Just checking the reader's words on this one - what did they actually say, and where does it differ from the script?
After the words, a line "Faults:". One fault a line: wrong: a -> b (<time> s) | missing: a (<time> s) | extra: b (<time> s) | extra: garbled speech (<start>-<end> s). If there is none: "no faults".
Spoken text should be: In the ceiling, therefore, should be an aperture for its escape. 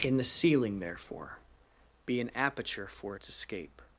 In the ceiling, therefore, be an aperture for its escape.
Faults:
missing: should (1.4 s)